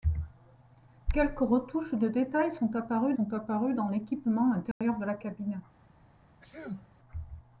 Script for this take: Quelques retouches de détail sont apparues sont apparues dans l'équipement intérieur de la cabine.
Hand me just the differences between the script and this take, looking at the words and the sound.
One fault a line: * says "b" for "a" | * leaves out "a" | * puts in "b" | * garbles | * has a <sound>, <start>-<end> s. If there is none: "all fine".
* has a dropout, 4.7-4.8 s
* has a sneeze, 6.4-6.9 s